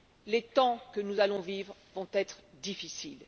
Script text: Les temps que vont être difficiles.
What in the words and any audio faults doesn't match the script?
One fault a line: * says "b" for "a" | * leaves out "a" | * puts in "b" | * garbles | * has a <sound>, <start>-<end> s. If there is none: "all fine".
* puts in "nous allons vivre"